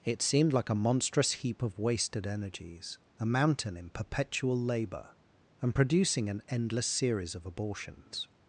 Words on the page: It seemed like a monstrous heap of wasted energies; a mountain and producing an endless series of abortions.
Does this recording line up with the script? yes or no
no